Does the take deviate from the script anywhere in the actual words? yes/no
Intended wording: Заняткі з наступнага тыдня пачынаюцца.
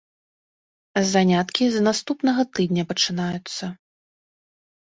no